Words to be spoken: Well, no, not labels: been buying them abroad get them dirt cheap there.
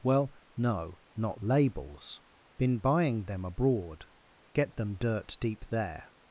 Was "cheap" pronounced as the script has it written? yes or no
no